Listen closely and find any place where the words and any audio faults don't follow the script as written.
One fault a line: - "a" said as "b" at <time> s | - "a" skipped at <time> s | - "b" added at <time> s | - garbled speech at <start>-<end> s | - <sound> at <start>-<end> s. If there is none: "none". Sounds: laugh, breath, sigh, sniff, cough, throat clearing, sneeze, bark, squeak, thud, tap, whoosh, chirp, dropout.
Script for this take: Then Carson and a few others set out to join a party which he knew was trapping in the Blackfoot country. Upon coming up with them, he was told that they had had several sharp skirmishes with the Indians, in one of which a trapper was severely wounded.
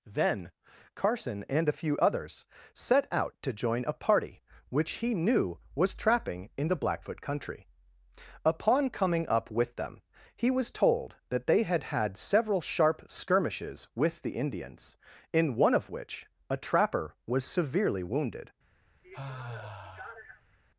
- sigh at 19.0-20.6 s